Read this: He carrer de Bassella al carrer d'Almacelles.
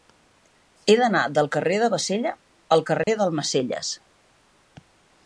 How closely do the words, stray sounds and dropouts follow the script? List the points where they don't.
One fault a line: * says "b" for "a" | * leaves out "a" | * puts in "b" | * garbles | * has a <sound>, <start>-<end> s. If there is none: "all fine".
* puts in "d'anar del"
* has a dropout, 3.0-3.1 s